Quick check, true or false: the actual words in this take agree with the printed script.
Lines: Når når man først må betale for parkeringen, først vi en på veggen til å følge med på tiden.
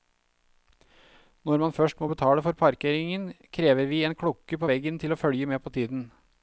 false